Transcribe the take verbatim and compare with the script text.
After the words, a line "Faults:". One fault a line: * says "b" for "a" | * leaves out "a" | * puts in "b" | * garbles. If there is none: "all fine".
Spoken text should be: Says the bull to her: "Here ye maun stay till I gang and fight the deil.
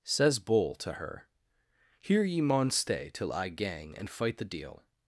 Says bull to her: "Here ye maun stay till I gang and fight the deil.
Faults:
* leaves out "the"